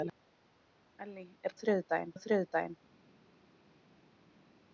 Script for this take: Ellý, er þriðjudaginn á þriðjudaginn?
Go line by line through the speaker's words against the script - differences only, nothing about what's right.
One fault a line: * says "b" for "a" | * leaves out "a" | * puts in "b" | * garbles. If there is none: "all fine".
all fine